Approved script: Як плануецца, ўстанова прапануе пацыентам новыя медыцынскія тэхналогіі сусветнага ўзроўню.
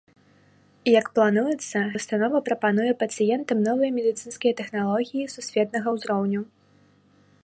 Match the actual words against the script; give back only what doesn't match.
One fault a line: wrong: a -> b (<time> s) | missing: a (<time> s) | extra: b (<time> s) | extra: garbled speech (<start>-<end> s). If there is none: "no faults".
no faults